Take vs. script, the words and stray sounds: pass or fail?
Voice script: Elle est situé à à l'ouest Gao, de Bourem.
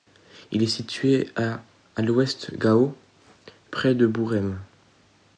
fail